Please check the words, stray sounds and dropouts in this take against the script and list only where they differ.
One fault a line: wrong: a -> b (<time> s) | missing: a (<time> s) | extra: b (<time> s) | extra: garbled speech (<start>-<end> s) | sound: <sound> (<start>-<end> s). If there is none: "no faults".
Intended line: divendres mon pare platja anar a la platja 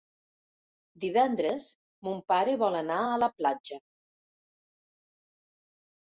wrong: platja -> vol (2.6 s)